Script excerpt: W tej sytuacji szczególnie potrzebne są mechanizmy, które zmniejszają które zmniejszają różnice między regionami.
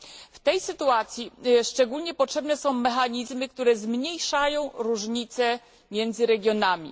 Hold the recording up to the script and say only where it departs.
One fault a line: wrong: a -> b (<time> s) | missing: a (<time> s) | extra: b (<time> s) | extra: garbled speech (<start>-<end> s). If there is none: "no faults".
missing: które zmniejszają (4.7 s)